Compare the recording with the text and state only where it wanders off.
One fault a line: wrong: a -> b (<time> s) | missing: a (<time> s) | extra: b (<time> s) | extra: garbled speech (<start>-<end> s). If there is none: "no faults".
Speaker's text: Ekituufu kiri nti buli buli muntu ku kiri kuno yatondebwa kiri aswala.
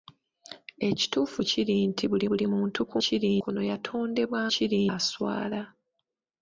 no faults